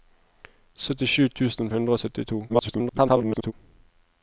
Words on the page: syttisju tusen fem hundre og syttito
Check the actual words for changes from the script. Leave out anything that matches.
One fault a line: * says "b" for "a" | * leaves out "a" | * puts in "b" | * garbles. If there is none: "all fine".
* leaves out "fem"
* garbles